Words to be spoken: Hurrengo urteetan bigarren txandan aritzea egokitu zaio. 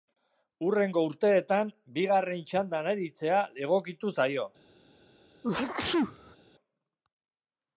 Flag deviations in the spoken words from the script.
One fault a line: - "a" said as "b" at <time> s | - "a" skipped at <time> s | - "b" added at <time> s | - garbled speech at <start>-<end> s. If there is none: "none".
none